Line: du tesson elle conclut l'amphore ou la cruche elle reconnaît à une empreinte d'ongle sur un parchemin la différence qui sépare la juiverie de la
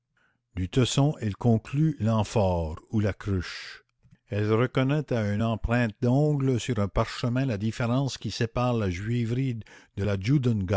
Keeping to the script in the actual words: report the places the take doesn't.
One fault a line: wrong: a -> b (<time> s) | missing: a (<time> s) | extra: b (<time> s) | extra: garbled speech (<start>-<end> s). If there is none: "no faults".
no faults